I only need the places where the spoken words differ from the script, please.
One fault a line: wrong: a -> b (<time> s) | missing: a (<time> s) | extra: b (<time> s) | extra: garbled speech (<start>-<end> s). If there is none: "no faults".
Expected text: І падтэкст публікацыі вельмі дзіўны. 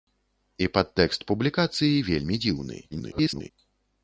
extra: garbled speech (2.9-3.5 s)